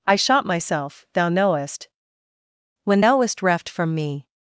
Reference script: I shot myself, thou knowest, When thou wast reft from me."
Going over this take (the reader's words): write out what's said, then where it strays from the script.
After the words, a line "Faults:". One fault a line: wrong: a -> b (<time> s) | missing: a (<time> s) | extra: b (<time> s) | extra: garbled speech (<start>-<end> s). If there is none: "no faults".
I shot myself, thou knowest, When thou wast reft from me."
Faults:
no faults